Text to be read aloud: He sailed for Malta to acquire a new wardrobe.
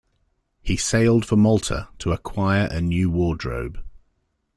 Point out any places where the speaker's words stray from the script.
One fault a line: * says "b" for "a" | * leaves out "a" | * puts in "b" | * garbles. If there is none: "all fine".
all fine